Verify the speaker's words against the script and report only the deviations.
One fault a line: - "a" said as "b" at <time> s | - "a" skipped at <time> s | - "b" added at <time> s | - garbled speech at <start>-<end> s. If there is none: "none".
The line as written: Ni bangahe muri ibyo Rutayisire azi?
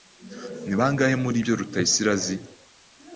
none